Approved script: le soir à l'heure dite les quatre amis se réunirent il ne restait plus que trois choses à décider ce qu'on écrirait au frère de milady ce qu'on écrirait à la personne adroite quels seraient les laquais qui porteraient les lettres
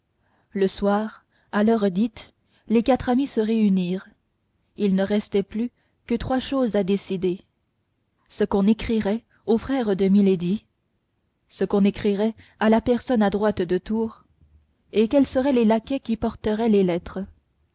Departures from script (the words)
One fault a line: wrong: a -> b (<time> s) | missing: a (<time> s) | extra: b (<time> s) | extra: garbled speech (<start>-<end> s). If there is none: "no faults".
extra: de tours et (13.6 s)